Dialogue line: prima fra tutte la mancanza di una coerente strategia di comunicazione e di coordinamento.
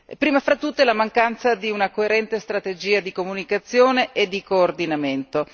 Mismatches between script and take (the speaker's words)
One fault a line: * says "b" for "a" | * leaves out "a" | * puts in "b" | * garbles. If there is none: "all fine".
all fine